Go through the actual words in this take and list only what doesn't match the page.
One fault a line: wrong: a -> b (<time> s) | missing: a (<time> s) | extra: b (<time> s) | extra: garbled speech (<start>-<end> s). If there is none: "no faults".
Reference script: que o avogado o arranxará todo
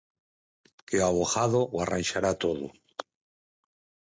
no faults